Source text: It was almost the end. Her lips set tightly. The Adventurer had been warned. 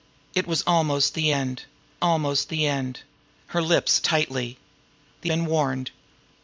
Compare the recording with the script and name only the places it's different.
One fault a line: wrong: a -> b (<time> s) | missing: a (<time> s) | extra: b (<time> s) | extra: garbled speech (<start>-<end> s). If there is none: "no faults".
extra: almost the end (2.0 s)
missing: set (4.0 s)
missing: Adventurer had (5.3 s)